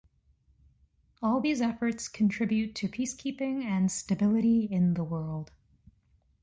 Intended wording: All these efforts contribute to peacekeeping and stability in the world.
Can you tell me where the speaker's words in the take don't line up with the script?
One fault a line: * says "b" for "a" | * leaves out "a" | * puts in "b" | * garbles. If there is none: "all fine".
all fine